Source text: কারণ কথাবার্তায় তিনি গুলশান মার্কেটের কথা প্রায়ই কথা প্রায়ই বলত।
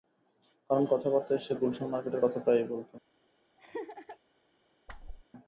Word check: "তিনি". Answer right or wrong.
wrong